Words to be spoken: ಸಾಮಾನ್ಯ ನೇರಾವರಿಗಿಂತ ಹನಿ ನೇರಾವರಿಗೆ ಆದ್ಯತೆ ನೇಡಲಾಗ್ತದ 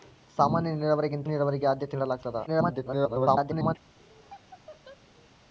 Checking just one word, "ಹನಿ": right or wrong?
wrong